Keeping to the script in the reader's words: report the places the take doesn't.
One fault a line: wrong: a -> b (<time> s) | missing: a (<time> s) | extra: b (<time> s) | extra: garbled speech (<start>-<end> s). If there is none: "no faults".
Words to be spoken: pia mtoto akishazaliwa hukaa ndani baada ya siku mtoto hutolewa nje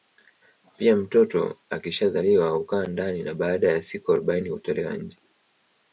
extra: na (3.2 s)
wrong: mtoto -> arobaini (4.1 s)